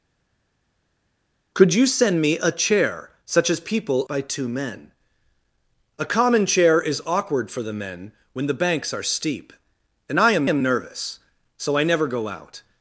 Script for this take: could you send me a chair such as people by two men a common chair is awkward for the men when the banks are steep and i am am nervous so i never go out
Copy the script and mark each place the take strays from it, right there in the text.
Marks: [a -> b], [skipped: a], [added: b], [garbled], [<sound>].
could you send me a chair such as people by two men a common chair is awkward for the men when the banks are steep and i am am nervous so i never go out